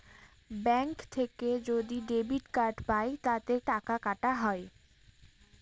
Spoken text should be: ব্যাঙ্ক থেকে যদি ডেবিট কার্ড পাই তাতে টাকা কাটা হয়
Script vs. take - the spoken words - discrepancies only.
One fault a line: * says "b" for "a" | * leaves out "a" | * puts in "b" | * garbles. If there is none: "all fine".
all fine